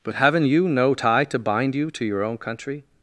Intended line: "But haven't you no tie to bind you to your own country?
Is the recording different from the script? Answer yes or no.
no